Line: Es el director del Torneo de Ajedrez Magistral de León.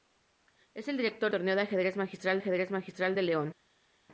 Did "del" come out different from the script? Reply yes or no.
yes